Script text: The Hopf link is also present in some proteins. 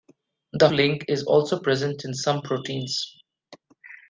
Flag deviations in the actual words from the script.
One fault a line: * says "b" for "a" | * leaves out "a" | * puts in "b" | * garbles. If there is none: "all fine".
* leaves out "Hopf"